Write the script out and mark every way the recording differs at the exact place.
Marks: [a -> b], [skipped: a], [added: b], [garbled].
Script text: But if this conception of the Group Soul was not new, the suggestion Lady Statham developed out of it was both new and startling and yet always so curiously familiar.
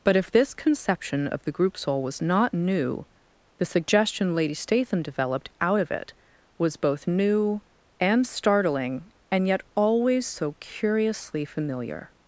But if this conception of the Group Soul was not new, the suggestion Lady Statham developed out of it was both new and startling and yet always so curiously familiar.